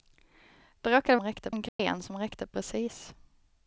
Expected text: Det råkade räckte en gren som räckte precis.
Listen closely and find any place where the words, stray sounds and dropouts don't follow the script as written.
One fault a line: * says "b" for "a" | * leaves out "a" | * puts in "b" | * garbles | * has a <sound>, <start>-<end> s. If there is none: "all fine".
* has a dropout, 1.7-1.8 s